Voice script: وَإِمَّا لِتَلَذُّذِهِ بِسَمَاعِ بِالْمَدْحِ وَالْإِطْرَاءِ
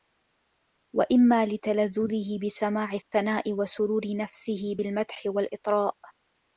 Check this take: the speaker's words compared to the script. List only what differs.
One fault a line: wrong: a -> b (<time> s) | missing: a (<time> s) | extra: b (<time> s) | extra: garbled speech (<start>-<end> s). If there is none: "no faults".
extra: الثَّنَاءِ وَسُرُورِ نَفْسِهِ (2.9 s)